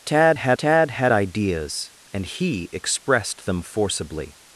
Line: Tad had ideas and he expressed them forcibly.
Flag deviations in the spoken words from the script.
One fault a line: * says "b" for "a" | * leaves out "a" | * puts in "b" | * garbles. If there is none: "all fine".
* puts in "tad had"